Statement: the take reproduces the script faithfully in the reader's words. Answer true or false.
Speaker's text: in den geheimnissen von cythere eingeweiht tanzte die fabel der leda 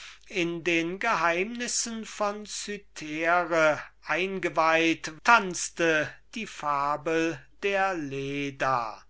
true